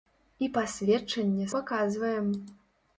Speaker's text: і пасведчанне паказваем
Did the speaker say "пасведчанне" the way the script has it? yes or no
yes